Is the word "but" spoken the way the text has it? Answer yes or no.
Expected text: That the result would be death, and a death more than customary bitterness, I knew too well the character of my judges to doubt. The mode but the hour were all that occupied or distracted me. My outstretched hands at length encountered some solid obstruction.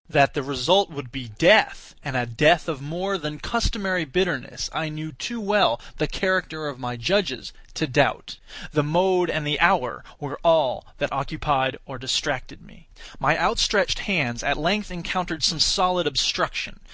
no